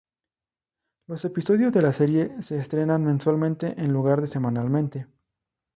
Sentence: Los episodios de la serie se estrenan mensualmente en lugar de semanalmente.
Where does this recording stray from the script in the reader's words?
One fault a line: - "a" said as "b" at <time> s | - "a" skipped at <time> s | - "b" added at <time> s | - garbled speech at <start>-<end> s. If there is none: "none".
none